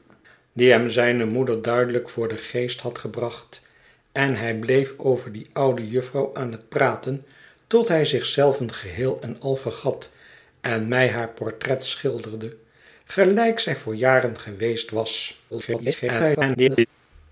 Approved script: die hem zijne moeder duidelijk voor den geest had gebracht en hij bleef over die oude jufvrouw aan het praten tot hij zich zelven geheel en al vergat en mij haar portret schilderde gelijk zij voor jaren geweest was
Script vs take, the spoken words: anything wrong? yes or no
yes